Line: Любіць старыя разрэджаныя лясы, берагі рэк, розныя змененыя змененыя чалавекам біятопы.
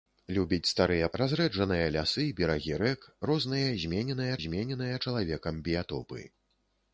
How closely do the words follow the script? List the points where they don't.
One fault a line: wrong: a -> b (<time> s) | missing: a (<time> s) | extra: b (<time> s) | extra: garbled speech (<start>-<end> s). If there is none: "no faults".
no faults